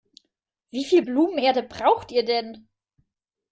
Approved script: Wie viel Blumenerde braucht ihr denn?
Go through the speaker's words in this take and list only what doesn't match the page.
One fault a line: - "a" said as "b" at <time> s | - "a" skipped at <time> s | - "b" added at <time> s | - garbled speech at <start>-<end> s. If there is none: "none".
none